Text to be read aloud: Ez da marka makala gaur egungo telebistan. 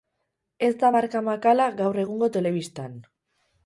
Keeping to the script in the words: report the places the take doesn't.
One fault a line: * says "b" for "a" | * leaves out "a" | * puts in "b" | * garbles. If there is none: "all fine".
all fine